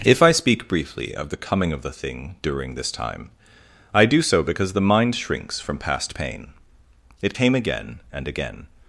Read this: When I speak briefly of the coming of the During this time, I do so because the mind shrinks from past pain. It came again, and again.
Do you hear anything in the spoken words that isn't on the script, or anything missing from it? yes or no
yes